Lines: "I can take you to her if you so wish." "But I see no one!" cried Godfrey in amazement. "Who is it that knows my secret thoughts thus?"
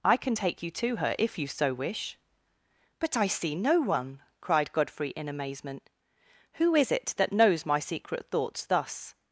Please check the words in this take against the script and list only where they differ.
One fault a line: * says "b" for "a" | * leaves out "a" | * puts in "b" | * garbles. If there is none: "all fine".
all fine